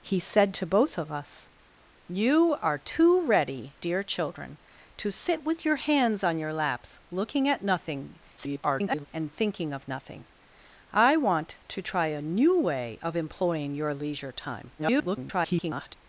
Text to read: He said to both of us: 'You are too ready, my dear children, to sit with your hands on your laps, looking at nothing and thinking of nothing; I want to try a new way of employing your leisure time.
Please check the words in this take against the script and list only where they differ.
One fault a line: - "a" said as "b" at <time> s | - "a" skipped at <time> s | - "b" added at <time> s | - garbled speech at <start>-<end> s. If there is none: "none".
- "my" skipped at 3.8 s
- garbled speech at 8.4-9.1 s
- garbled speech at 14.8-15.9 s